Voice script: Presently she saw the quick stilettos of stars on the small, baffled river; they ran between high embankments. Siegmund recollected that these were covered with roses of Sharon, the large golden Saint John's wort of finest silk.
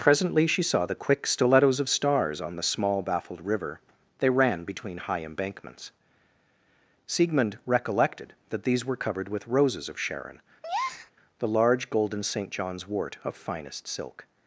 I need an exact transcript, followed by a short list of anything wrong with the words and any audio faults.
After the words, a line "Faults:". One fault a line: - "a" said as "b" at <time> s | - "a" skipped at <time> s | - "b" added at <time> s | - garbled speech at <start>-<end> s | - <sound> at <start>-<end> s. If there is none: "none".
Presently she saw the quick stilettos of stars on the small, baffled river; they ran between high embankments. Siegmund recollected that these were covered with roses of Sharon, the large golden Saint John's wort of finest silk.
Faults:
- breath at 10.6-11.1 s